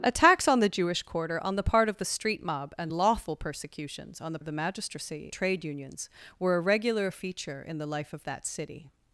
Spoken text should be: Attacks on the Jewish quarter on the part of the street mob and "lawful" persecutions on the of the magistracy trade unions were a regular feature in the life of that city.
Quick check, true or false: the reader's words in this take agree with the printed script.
true